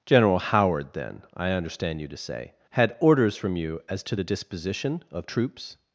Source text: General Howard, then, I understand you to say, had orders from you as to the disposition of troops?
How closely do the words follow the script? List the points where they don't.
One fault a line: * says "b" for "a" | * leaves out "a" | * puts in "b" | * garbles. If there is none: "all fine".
all fine